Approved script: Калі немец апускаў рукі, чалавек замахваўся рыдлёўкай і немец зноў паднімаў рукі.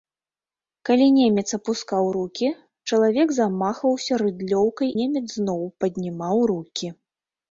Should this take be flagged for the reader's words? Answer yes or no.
yes